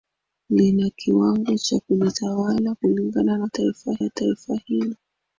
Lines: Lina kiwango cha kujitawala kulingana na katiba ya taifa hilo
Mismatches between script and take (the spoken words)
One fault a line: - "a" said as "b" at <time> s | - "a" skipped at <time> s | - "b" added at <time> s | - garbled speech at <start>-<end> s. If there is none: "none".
- "katiba" said as "taifa" at 3.5 s